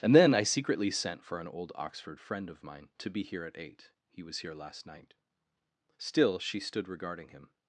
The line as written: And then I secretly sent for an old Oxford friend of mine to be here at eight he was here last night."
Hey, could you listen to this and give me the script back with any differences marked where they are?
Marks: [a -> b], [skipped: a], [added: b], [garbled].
And then I secretly sent for an old Oxford friend of mine to be here at eight he was here last night." [added: Still she stood regarding him]